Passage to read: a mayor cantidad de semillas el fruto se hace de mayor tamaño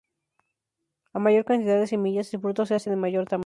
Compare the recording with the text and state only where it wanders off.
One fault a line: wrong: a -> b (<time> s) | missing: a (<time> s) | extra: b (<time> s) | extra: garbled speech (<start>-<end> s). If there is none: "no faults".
no faults